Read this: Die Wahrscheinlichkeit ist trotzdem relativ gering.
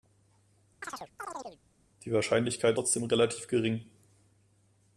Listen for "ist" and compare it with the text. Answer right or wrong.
wrong